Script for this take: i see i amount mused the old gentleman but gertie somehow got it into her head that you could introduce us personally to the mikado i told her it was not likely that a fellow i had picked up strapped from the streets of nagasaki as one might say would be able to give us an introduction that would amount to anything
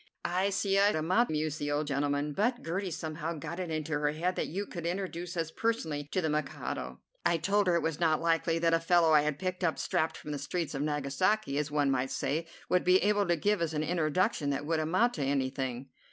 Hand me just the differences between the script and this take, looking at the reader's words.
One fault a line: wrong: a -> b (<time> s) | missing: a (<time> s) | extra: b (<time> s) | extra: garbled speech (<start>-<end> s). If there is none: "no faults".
no faults